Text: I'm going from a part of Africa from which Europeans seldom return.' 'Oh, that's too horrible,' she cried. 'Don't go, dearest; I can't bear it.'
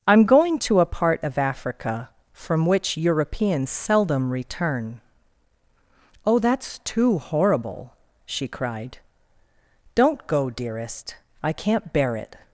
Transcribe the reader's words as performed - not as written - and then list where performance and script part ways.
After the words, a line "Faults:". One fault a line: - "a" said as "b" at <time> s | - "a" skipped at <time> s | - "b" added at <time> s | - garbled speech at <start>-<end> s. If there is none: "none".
I'm going to a part of Africa from which Europeans seldom return.' 'Oh, that's too horrible,' she cried. 'Don't go, dearest; I can't bear it.'
Faults:
- "from" said as "to" at 0.6 s